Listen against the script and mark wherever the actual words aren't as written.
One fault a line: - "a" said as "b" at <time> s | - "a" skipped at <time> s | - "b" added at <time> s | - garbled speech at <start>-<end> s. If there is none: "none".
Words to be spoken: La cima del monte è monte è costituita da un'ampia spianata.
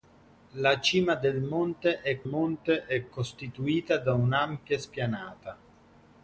none